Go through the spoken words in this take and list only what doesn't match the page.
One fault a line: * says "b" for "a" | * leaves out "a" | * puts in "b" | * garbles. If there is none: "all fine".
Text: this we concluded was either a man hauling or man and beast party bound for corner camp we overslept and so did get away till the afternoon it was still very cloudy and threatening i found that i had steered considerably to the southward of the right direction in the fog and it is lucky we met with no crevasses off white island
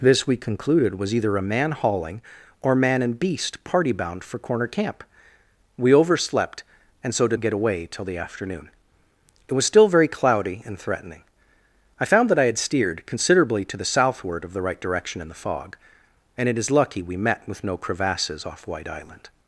all fine